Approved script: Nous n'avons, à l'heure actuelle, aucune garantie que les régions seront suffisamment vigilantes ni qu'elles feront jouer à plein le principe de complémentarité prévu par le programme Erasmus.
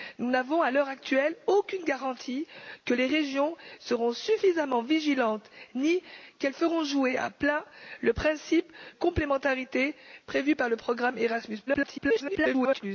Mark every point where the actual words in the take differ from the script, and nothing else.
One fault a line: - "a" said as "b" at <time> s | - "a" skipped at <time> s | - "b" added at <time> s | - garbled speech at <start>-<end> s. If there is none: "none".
- "de" skipped at 8.7 s
- garbled speech at 11.7-12.8 s